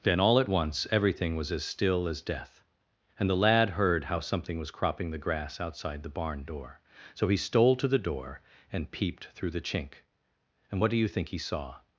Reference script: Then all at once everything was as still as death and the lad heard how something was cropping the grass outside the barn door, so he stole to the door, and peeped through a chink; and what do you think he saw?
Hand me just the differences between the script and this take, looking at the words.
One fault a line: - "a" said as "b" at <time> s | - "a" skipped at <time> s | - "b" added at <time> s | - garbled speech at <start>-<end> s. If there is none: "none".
- "a" said as "the" at 9.5 s